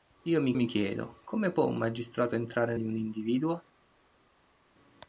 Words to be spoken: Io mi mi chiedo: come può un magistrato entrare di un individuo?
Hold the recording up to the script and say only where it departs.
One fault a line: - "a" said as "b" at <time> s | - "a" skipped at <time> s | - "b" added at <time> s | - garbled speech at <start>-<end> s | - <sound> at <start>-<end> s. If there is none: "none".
none